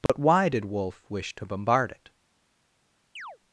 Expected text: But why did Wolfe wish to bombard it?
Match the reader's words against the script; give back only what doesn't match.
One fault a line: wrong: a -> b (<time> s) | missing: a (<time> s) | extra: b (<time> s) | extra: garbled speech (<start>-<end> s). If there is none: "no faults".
no faults